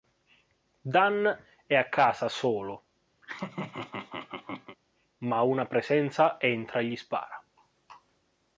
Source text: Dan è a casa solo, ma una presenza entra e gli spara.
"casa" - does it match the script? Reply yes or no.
yes